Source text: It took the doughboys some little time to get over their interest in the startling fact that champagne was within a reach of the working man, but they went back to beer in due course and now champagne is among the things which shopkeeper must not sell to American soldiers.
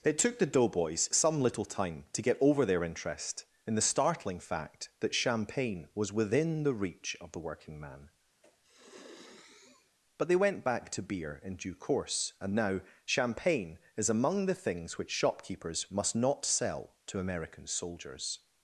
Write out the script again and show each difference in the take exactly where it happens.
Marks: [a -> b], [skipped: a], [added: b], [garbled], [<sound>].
It took the doughboys some little time to get over their interest in the startling fact that champagne was within [a -> the] reach of the working man, [sniff] but they went back to beer in due course and now champagne is among the things which [shopkeeper -> shopkeepers] must not sell to American soldiers.